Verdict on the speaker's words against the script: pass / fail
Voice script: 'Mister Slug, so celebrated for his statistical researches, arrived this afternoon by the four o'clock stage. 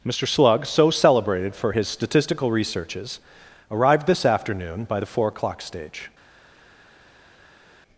pass